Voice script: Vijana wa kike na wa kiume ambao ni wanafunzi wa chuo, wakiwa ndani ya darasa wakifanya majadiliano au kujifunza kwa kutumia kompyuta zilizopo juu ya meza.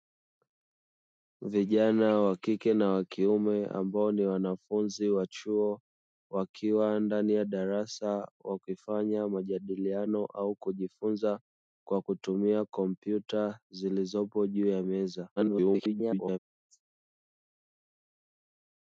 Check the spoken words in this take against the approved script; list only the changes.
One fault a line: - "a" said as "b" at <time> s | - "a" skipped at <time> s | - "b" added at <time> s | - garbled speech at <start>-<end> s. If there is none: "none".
- garbled speech at 15.4-16.4 s